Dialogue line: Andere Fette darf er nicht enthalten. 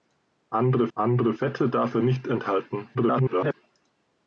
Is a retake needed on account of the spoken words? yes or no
yes